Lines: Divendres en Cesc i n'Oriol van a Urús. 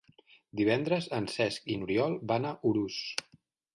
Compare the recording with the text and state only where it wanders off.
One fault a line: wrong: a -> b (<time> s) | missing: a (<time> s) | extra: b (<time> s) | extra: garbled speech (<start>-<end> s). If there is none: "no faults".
no faults